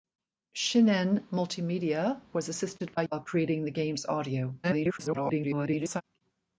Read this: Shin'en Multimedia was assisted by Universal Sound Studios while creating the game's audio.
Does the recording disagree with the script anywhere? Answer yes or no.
yes